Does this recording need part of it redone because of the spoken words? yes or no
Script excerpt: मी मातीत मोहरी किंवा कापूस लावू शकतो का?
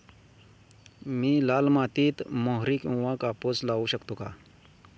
yes